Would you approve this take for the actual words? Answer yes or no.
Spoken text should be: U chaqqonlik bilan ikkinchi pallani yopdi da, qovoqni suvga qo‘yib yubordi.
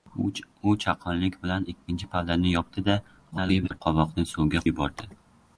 no